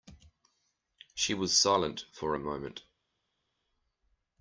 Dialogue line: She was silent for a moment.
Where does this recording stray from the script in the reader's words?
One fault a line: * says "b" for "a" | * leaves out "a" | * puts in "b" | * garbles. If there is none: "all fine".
all fine